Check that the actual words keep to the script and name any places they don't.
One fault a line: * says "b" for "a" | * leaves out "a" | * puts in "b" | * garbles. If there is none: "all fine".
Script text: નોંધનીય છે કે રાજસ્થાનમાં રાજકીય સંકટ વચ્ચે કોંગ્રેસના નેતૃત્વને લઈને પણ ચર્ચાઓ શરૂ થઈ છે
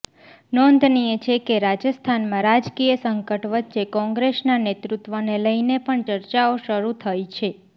all fine